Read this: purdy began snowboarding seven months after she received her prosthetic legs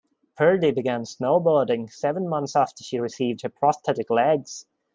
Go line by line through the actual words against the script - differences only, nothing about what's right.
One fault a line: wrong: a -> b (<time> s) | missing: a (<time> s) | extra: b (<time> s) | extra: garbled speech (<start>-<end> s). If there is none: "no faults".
no faults